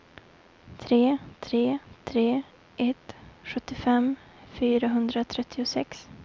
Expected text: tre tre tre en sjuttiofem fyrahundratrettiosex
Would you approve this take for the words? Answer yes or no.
no